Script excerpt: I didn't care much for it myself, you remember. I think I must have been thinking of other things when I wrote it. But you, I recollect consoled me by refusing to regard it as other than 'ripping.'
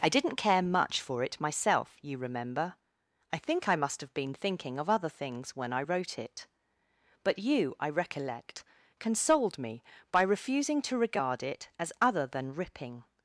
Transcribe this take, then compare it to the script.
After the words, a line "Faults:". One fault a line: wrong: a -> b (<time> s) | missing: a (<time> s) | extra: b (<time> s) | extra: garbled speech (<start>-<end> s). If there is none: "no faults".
I didn't care much for it myself, you remember. I think I must have been thinking of other things when I wrote it. But you, I recollect consoled me by refusing to regard it as other than 'ripping.'
Faults:
no faults